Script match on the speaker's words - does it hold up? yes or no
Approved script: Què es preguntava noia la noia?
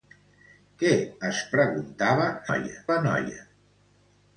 yes